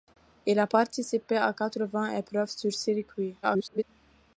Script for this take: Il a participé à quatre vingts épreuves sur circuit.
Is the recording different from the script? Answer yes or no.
yes